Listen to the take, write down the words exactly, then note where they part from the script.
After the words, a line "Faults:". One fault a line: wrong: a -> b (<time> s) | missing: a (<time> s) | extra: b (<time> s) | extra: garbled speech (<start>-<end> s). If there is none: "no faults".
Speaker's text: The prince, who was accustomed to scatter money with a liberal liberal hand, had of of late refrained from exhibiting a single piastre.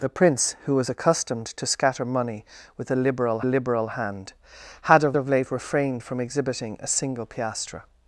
The prince, who was accustomed to scatter money with a liberal liberal hand, had of of late refrained from exhibiting a single piastre.
Faults:
no faults